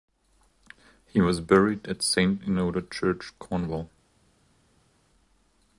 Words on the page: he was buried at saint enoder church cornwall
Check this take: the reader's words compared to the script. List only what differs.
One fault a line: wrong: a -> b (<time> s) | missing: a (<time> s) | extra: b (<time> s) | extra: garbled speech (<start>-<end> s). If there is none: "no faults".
no faults